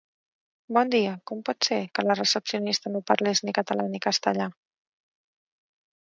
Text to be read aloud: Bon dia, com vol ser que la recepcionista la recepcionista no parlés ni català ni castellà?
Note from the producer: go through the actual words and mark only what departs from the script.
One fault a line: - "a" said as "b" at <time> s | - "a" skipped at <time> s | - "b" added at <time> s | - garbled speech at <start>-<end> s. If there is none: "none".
- "vol" said as "pot" at 1.5 s
- "la recepcionista" skipped at 2.9 s